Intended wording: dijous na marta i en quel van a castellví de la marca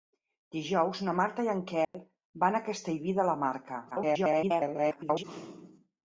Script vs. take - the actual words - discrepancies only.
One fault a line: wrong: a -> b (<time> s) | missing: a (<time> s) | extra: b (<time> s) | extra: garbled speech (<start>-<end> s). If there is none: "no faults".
extra: garbled speech (3.9-5.2 s)